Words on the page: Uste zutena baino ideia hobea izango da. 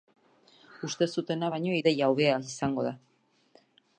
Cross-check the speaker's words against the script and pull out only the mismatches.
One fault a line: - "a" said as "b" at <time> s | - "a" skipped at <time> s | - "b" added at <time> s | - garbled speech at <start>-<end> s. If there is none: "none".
none